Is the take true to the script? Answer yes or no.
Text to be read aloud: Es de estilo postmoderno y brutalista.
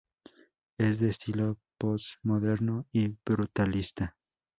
yes